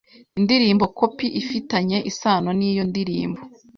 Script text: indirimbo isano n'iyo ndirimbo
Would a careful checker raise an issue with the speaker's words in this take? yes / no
yes